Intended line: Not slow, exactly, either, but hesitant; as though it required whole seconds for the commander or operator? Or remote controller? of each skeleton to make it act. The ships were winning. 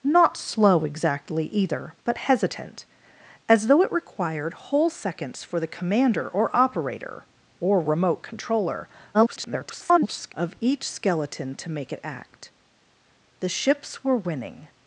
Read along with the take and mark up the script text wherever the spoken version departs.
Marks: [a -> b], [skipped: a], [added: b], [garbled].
Not slow, exactly, either, but hesitant; as though it required whole seconds for the commander or operator? Or remote controller? [garbled] of each skeleton to make it act. The ships were winning.